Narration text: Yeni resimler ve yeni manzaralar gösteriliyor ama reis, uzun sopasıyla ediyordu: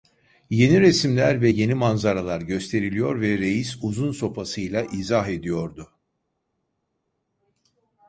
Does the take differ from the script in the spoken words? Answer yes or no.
yes